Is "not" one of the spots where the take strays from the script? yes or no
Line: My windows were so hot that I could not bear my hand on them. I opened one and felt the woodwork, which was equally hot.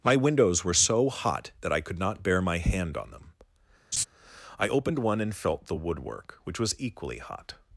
no